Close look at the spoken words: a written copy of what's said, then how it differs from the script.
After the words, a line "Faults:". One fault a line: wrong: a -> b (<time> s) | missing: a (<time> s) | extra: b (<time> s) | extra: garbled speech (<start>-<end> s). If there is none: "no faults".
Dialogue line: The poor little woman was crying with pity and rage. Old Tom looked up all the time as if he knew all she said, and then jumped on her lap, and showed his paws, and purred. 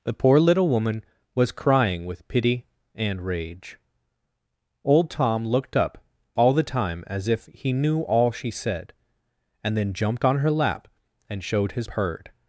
The poor little woman was crying with pity and rage. Old Tom looked up all the time as if he knew all she said, and then jumped on her lap, and showed his purred.
Faults:
missing: paws and (11.9 s)